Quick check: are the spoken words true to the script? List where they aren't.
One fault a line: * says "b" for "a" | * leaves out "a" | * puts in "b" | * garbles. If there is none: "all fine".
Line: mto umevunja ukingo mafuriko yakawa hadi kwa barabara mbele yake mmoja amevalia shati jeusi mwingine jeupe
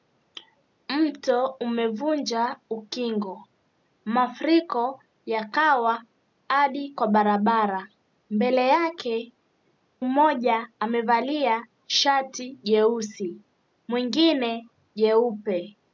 all fine